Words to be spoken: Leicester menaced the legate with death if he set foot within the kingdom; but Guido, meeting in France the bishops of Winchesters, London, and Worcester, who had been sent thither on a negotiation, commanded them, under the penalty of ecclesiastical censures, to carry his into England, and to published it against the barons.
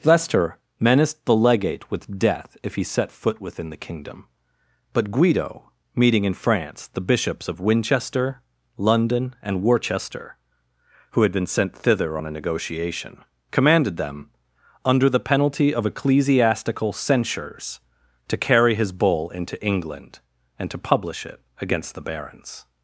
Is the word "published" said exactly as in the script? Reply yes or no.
no